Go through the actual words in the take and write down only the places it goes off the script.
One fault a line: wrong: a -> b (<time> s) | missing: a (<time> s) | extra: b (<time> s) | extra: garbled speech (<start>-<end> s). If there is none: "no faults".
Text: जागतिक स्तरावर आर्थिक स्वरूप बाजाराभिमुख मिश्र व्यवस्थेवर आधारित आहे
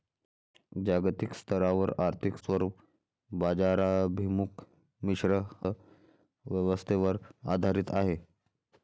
no faults